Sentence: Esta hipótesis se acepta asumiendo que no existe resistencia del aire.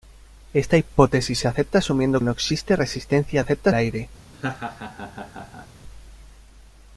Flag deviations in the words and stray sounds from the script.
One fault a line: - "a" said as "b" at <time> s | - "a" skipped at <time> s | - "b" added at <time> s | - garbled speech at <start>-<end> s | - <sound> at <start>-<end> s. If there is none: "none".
- "que" skipped at 2.2 s
- "del" said as "acepta" at 3.4 s
- laugh at 4.3-5.7 s